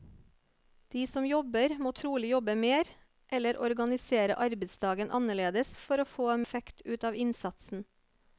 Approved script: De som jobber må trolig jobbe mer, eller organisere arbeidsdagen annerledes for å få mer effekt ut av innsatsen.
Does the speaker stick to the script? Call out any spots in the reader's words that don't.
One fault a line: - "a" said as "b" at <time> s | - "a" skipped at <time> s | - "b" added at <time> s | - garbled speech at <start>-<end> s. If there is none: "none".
- "mer" skipped at 6.3 s